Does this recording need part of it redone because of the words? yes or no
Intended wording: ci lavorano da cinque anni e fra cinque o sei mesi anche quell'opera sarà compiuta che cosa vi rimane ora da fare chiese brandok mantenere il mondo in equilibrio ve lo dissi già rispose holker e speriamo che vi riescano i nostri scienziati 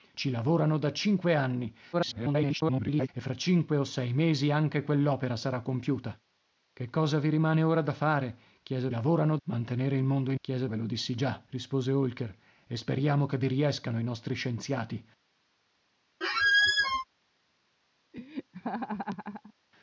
yes